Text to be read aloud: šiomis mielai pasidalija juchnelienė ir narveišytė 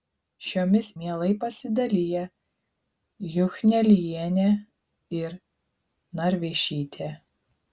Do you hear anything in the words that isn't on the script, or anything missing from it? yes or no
no